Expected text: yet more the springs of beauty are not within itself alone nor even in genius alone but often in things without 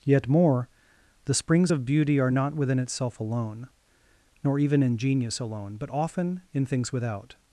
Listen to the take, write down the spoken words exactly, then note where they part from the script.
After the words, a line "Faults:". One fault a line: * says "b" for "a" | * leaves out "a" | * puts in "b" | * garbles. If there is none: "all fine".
yet more the springs of beauty are not within itself alone nor even in genius alone but often in things without
Faults:
all fine